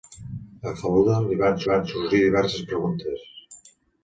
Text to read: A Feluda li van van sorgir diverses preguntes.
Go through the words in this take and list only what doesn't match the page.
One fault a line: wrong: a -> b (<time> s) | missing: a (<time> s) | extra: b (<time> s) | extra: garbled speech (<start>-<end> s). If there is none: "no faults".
no faults